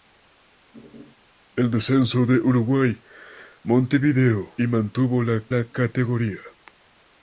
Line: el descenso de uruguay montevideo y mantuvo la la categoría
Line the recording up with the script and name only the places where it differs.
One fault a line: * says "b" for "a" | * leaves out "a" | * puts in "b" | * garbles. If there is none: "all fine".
all fine